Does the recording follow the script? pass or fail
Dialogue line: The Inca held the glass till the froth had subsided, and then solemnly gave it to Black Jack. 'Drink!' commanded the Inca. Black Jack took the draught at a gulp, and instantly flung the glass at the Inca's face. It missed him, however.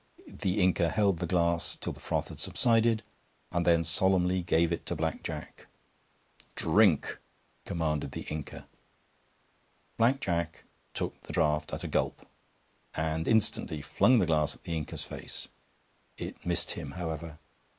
pass